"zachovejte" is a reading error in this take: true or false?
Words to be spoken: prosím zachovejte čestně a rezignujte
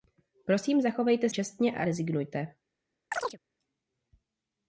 false